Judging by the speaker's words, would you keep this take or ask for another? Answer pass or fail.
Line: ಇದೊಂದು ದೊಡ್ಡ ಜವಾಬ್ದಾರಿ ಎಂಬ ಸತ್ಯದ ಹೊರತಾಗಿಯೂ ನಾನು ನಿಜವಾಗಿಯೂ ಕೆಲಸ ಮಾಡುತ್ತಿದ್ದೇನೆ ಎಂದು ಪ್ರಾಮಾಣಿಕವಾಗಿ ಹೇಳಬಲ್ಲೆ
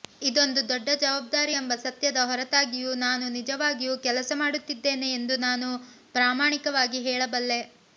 fail